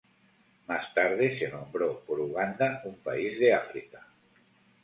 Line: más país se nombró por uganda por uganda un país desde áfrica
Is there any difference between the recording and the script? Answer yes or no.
yes